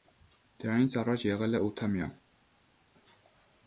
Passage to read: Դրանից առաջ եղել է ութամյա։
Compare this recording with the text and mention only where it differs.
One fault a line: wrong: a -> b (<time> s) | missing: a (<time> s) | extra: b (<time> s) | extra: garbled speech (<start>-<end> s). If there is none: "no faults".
no faults